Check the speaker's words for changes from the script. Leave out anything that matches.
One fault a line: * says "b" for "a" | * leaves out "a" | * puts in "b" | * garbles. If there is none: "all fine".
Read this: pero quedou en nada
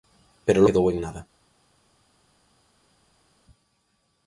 all fine